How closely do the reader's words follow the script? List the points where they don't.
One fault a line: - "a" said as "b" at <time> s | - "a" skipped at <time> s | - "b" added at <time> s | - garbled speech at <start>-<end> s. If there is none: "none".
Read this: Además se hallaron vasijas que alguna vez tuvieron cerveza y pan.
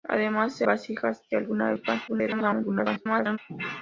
- "hallaron" skipped at 0.7 s
- "vez tuvieron cerveza" skipped at 1.7 s
- garbled speech at 2.1-3.4 s